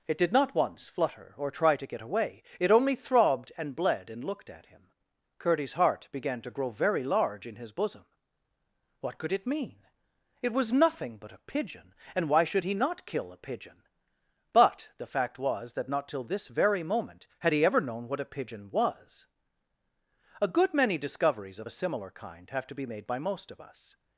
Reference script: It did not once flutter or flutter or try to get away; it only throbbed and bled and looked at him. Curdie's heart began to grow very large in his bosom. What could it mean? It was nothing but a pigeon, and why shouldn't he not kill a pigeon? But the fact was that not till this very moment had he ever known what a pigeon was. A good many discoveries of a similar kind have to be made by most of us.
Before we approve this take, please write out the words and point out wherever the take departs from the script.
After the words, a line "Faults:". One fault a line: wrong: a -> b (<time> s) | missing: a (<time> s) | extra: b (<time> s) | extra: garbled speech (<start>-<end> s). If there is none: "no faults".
It did not once flutter or try to get away; it only throbbed and bled and looked at him. Curdie's heart began to grow very large in his bosom. What could it mean? It was nothing but a pigeon, and why should he not kill a pigeon? But the fact was that not till this very moment had he ever known what a pigeon was. A good many discoveries of a similar kind have to be made by most of us.
Faults:
missing: flutter or (1.5 s)
wrong: shouldn't -> should (12.4 s)